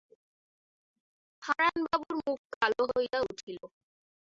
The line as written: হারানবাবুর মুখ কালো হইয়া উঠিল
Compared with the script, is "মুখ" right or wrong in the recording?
right